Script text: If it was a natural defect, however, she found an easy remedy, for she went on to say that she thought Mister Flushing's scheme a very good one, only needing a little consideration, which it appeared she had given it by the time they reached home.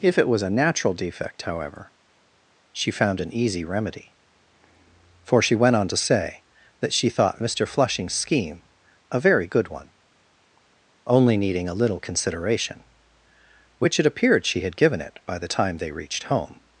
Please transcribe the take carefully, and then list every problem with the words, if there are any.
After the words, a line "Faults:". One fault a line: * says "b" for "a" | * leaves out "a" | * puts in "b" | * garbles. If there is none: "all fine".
If it was a natural defect, however, she found an easy remedy, for she went on to say that she thought Mister Flushing's scheme a very good one, only needing a little consideration, which it appeared she had given it by the time they reached home.
Faults:
all fine